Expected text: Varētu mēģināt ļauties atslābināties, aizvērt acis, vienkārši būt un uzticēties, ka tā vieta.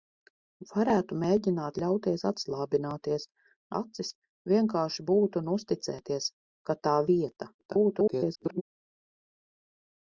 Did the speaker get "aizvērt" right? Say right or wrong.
wrong